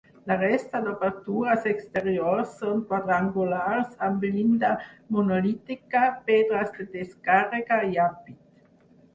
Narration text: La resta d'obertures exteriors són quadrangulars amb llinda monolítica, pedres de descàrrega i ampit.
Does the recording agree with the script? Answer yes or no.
yes